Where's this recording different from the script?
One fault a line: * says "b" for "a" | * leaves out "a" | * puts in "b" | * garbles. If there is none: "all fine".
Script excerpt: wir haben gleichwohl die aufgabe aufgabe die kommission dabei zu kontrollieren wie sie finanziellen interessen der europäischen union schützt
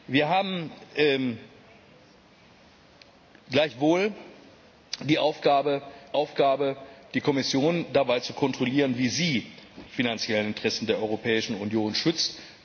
all fine